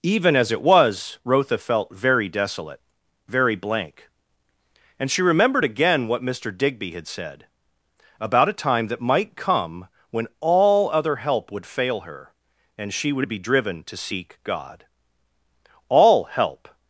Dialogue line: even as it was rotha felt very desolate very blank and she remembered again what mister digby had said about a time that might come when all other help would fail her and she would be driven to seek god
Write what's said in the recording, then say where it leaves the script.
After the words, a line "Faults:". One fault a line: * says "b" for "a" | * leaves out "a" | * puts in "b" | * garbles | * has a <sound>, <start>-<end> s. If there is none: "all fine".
even as it was rotha felt very desolate very blank and she remembered again what mister digby had said about a time that might come when all other help would fail her and she would be driven to seek god all help
Faults:
* puts in "all help"